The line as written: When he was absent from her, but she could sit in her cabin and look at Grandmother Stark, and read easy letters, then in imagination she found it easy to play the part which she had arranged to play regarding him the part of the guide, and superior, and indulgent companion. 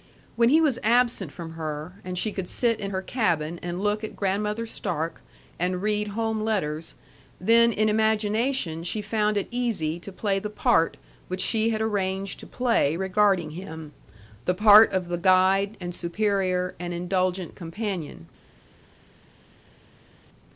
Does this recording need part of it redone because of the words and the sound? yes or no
yes